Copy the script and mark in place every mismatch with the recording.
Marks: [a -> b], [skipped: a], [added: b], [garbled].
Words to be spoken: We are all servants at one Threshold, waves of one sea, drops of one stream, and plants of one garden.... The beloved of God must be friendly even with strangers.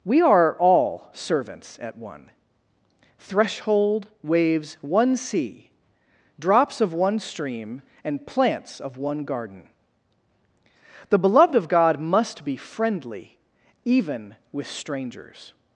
We are all servants at one Threshold, waves [skipped: of] one sea, drops of one stream, and plants of one garden.... The beloved of God must be friendly even with strangers.